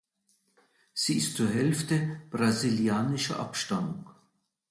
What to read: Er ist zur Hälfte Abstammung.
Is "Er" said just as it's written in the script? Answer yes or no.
no